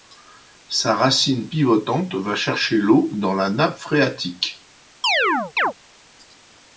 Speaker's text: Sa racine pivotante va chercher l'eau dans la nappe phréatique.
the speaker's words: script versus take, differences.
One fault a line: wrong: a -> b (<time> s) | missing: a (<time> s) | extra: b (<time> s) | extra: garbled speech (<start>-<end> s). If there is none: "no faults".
no faults